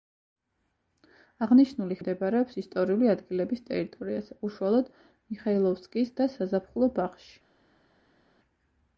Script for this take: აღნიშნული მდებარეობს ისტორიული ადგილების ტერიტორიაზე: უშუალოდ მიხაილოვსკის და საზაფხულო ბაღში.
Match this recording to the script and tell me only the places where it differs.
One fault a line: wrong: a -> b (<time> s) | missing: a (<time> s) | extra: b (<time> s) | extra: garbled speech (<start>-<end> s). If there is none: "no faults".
no faults